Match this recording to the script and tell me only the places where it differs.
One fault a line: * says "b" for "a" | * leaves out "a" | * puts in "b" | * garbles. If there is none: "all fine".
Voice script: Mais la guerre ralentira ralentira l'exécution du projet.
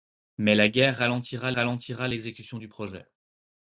all fine